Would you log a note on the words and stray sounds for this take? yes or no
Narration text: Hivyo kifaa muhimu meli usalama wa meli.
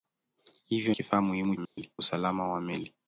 yes